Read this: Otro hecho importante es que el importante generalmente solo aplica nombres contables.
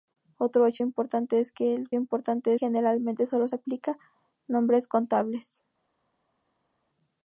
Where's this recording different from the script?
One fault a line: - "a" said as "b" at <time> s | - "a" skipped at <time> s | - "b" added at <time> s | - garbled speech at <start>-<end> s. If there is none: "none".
none